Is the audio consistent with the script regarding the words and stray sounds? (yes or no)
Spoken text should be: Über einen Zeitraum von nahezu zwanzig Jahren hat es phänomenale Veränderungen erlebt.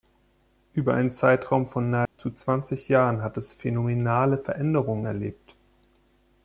no